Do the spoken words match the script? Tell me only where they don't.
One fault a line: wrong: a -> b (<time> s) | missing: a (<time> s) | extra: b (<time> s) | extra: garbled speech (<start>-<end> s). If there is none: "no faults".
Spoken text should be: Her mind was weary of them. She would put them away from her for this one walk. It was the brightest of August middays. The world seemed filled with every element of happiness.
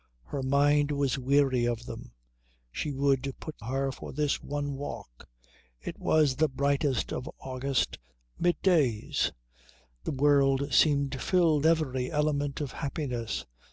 missing: them away from (3.6 s)
missing: with (11.6 s)